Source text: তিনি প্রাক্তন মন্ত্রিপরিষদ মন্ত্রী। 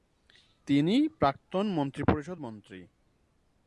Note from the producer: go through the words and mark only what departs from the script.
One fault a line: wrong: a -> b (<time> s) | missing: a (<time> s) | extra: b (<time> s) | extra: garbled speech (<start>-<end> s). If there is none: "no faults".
no faults